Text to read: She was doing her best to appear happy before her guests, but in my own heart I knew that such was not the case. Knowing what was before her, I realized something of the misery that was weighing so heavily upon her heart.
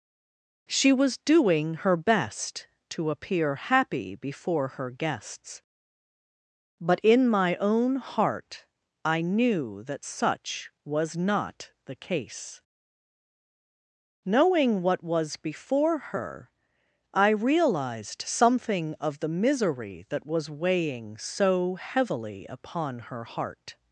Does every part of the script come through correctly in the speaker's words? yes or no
yes